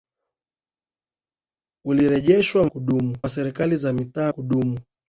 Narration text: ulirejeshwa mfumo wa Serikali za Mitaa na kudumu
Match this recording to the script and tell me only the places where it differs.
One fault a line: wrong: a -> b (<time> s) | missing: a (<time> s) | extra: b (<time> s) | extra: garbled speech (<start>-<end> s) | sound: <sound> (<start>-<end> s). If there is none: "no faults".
wrong: mfumo -> kudumu (2.6 s)
missing: na (4.3 s)